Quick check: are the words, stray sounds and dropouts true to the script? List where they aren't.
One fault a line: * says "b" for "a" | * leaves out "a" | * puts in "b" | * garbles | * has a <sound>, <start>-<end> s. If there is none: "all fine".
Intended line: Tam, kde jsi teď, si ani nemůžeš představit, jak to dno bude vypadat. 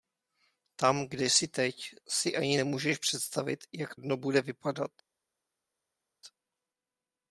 * leaves out "to"